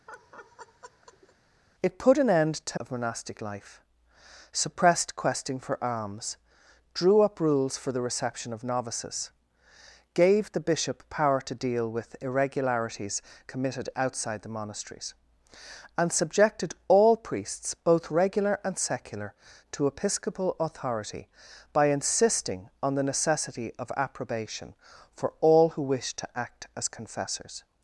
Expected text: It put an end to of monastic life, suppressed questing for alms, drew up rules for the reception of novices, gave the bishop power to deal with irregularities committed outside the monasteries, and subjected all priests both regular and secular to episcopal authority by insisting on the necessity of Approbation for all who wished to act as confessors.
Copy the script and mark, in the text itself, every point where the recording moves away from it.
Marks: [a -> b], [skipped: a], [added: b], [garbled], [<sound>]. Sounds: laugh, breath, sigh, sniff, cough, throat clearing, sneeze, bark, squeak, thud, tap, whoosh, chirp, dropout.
[laugh] It put an end to of monastic life, suppressed questing for alms, drew up rules for the reception of novices, gave the bishop power to deal with irregularities committed outside the monasteries, and subjected all priests both regular and secular to episcopal authority by insisting on the necessity of Approbation for all who wished to act as confessors.